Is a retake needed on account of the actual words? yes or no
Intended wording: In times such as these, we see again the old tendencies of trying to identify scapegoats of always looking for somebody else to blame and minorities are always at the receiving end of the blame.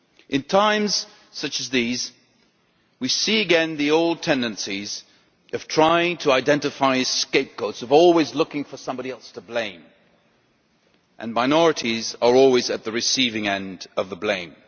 no